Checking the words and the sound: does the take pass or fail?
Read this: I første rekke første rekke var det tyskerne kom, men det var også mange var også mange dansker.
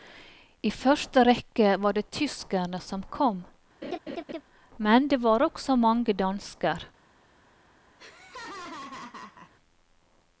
fail